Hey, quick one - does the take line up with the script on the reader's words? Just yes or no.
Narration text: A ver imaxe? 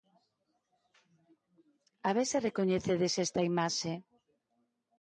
no